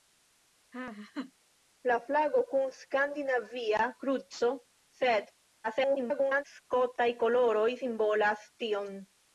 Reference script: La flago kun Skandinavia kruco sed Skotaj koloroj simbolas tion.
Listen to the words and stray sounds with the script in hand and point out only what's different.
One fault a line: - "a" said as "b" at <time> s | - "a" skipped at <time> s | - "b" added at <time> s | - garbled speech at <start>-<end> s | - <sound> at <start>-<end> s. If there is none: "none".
- laugh at 0.7-1.3 s
- garbled speech at 5.6-6.4 s